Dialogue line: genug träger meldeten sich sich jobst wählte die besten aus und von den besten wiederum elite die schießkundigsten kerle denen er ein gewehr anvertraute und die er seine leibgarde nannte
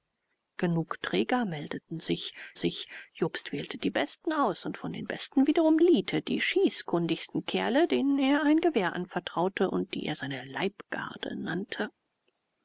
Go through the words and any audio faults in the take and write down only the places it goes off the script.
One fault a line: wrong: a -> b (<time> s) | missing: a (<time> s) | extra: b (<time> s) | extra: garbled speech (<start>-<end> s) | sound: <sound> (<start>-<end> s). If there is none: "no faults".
no faults